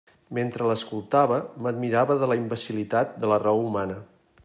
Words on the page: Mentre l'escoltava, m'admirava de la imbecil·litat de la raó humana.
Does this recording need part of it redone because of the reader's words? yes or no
no